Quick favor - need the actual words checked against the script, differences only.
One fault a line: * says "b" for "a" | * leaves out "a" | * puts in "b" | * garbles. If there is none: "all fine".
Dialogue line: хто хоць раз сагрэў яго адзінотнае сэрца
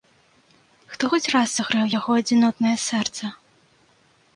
all fine